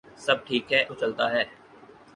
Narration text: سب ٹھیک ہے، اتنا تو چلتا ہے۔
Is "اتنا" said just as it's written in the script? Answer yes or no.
no